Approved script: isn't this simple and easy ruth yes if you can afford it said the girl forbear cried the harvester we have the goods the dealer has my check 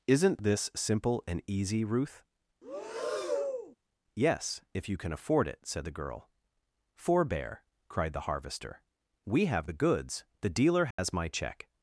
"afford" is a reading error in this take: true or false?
false